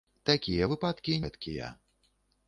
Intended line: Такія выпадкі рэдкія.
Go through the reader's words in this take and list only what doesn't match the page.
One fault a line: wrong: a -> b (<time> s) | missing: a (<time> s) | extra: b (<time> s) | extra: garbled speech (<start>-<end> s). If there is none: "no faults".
no faults